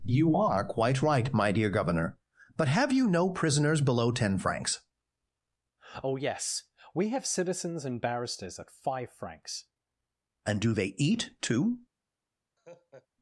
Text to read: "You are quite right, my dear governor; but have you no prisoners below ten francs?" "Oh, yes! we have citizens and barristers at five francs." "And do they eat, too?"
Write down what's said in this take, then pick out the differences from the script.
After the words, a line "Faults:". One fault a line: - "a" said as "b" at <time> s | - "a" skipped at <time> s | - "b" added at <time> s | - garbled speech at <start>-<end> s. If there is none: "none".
"You are quite right, my dear governor; but have you no prisoners below ten francs?" "Oh, yes! we have citizens and barristers at five francs." "And do they eat, too?"
Faults:
none